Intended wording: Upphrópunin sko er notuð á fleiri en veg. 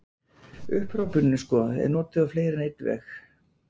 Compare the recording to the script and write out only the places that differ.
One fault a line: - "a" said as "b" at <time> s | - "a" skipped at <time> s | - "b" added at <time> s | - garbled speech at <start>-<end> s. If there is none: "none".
- "einn" added at 2.7 s